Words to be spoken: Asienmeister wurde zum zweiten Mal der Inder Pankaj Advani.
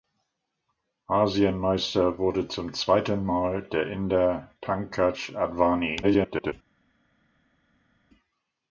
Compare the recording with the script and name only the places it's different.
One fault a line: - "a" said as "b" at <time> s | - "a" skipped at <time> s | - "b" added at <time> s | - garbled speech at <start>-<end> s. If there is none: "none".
- garbled speech at 6.0-6.5 s